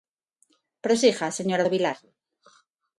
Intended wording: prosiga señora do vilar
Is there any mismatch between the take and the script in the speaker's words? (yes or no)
no